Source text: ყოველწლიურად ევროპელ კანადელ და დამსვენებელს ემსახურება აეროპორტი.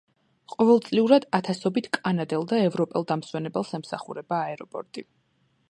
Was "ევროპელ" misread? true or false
true